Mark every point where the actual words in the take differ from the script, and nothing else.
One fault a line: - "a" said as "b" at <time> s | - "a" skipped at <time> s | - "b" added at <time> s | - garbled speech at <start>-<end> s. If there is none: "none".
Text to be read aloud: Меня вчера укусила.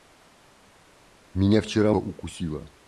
none